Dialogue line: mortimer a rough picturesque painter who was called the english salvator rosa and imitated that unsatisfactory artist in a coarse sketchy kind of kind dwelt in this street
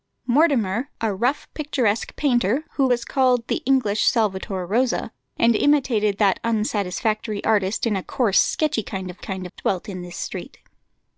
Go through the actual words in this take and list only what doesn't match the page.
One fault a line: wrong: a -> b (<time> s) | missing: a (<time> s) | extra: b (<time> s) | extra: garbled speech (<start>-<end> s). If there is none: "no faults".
no faults